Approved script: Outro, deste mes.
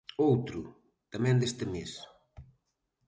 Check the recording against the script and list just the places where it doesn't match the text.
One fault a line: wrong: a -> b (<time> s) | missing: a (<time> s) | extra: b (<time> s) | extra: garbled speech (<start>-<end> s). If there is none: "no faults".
extra: tamén (1.1 s)